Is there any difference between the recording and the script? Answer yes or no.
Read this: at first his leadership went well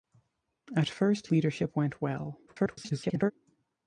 yes